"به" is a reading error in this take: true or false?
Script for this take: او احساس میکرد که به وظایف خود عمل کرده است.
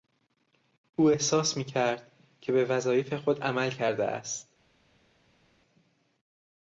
false